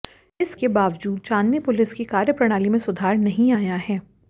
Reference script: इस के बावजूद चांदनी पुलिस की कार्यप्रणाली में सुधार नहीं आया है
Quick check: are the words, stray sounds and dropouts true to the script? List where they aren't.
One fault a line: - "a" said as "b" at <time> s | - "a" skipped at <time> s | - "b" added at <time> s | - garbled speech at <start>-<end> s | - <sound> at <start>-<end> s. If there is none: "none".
none